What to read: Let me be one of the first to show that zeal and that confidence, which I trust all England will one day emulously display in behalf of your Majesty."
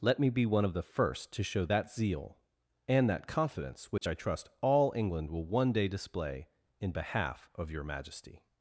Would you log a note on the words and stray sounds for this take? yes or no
yes